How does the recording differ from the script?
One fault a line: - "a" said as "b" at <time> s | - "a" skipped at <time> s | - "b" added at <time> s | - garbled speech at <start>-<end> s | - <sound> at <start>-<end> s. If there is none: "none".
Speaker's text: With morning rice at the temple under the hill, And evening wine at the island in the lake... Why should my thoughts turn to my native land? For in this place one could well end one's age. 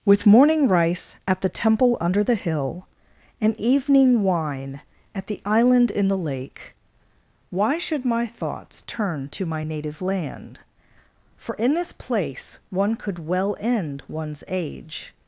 none